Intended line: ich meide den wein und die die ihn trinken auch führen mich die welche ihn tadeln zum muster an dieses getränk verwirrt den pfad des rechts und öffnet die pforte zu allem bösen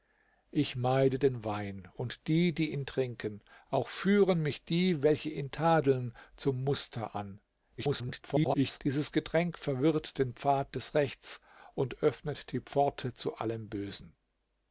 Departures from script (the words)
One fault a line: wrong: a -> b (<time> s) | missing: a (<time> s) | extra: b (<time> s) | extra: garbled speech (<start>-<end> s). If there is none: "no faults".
extra: garbled speech (7.8-8.8 s)